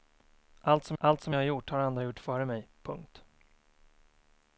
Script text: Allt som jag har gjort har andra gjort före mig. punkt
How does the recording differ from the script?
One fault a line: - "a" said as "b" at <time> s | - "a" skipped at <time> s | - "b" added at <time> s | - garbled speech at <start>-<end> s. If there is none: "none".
- "allt som" added at 1.0 s